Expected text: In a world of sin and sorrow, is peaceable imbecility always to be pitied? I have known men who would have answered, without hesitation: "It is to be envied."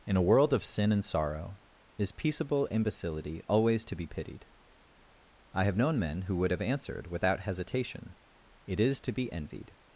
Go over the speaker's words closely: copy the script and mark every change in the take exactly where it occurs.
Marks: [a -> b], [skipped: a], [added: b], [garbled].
In a world of sin and sorrow, is peaceable imbecility always to be pitied? I have known men who would have answered, without hesitation: "It is to be envied."